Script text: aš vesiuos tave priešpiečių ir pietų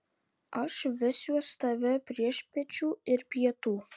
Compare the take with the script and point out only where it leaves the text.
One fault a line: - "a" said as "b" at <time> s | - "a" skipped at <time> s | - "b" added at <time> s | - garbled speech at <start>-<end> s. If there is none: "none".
none